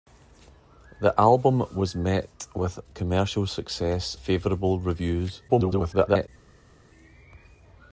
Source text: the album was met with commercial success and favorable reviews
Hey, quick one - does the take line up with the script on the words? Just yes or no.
no